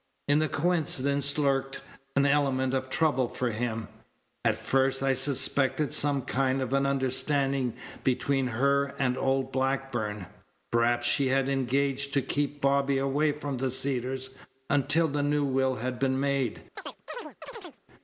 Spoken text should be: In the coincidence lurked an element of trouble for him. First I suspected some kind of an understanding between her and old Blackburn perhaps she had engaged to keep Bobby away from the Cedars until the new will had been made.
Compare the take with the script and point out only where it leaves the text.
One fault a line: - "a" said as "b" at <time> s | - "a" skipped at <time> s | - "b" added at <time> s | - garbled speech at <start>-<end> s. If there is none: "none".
- "At" added at 4.4 s